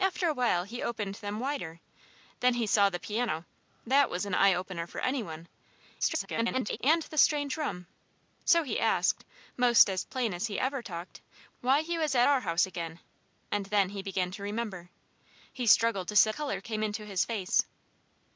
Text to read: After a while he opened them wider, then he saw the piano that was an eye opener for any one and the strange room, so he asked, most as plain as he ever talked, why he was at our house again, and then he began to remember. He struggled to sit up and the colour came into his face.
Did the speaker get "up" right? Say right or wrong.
wrong